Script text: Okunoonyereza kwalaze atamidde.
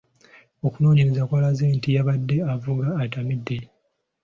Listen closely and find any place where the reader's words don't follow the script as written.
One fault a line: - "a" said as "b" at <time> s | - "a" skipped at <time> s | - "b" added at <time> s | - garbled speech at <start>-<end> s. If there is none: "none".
- "nti yabadde avuga" added at 1.8 s